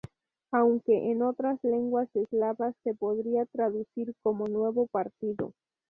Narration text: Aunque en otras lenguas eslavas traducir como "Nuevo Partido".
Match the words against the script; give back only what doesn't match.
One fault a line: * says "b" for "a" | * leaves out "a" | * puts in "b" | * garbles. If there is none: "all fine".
* puts in "se podría"